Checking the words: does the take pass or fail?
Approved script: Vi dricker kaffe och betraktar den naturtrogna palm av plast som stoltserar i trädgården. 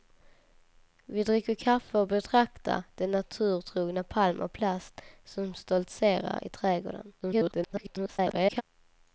fail